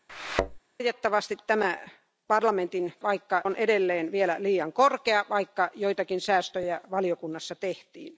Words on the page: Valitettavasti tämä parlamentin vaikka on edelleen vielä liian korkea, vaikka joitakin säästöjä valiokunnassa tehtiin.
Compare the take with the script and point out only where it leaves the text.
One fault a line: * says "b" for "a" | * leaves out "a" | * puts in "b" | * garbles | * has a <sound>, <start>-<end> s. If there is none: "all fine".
* has a thud, 0.1-0.6 s